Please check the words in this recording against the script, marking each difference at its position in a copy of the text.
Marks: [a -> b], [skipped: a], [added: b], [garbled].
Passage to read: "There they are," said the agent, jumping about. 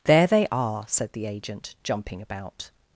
"There they are," said the agent, jumping about.